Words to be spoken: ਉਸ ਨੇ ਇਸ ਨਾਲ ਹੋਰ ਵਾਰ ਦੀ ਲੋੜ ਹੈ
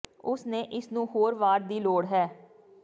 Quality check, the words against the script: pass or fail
fail